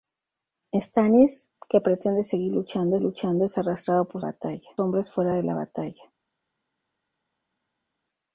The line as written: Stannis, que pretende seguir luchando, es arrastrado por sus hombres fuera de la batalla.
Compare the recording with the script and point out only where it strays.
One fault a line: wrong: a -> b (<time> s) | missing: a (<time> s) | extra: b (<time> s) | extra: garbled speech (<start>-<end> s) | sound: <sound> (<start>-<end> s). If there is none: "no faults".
extra: luchando (3.0 s)
wrong: sus -> batalla (4.2 s)